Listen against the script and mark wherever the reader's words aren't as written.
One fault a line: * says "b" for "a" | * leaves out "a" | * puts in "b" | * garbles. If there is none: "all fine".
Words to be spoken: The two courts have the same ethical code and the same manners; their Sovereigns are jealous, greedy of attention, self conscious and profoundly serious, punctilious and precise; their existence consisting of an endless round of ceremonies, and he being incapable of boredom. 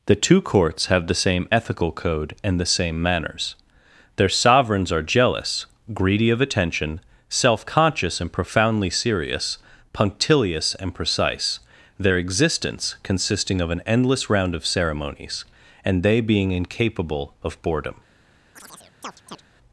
* says "they" for "he"